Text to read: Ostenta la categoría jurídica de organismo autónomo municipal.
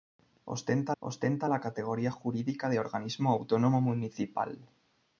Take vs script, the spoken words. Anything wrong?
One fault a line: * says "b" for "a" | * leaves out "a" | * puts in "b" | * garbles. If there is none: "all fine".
* puts in "ostenta"